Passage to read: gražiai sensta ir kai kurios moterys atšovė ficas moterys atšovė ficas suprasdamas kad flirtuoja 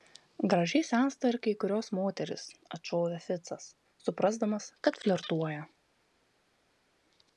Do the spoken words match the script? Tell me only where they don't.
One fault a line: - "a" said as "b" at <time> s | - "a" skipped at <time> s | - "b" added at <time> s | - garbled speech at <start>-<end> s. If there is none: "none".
- "moterys atšovė ficas" skipped at 3.7 s